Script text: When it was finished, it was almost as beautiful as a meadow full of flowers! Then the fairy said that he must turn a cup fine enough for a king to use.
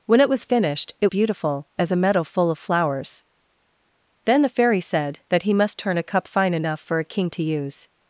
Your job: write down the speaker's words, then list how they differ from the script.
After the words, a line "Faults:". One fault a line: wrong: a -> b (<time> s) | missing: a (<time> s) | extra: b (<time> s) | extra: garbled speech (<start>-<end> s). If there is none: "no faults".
When it was finished, it beautiful as a meadow full of flowers! Then the fairy said that he must turn a cup fine enough for a king to use.
Faults:
missing: was almost as (1.1 s)